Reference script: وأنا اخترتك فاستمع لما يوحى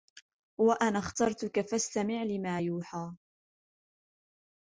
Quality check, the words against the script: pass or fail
pass